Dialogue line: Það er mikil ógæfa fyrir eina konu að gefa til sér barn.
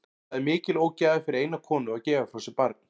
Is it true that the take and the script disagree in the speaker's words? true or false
true